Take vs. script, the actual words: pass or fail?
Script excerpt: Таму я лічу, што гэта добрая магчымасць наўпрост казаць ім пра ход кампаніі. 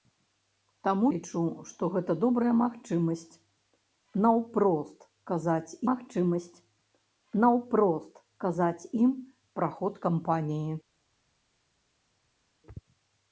fail